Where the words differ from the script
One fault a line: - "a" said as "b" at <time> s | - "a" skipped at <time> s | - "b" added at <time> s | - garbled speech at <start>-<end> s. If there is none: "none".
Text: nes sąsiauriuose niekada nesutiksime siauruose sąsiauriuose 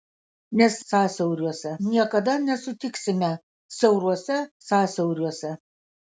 none